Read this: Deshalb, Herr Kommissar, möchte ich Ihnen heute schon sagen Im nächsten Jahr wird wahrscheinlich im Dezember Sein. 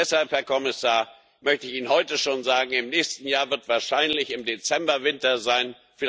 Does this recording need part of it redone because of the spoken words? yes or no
yes